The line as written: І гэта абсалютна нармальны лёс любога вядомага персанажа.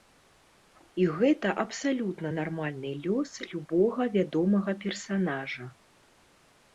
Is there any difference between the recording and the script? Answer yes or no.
no